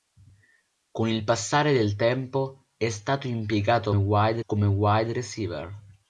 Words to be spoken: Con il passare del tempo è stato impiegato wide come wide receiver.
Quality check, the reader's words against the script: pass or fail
pass